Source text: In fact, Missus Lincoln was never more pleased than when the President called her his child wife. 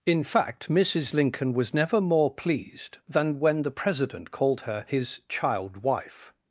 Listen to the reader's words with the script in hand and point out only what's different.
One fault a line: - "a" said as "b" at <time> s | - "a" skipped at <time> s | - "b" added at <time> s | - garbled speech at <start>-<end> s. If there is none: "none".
none